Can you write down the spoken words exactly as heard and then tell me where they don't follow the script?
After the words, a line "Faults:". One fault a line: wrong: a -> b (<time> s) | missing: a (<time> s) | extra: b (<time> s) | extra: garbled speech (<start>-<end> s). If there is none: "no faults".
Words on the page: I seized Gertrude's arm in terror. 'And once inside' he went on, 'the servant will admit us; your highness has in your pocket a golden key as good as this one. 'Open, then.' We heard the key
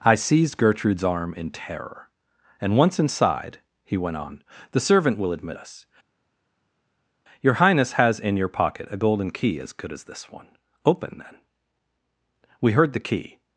I seized Gertrude's arm in terror. 'And once inside' he went on, 'the servant will admit us; your highness has in your pocket a golden key as good as this one. 'Open, then.' We heard the key
Faults:
no faults